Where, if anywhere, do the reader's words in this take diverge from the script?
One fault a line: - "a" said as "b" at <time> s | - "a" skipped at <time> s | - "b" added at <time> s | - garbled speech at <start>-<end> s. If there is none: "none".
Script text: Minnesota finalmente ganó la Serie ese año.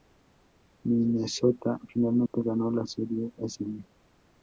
none